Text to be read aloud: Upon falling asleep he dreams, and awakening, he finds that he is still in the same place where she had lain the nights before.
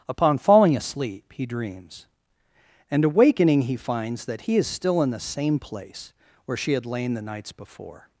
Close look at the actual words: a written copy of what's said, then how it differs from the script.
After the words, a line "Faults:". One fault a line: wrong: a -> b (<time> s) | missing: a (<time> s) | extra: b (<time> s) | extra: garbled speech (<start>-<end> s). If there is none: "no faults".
Upon falling asleep he dreams, and awakening, he finds that he is still in the same place where she had lain the nights before.
Faults:
no faults